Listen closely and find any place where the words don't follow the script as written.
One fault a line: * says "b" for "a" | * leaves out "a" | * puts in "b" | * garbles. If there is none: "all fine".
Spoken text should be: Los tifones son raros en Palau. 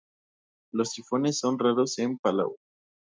all fine